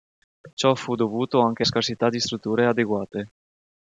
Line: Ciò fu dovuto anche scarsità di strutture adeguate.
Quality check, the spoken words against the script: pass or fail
pass